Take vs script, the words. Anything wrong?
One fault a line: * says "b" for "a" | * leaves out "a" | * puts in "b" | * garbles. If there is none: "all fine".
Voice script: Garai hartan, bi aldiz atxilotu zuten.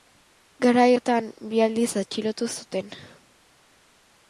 all fine